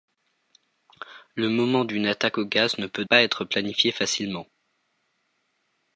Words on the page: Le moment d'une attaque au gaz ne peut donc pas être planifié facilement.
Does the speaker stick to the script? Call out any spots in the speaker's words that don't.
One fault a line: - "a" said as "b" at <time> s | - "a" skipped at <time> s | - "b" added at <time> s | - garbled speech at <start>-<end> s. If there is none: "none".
- "donc" skipped at 3.0 s